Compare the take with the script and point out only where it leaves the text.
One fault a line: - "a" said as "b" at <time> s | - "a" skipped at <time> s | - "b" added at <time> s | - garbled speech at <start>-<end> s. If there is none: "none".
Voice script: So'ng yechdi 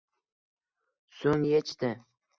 none